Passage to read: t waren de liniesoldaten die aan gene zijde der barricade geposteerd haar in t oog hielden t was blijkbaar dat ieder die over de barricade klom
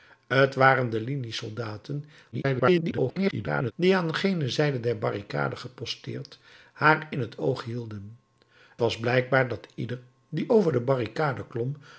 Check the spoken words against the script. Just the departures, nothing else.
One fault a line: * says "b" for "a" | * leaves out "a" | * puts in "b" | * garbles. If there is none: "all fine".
* garbles
* leaves out "t"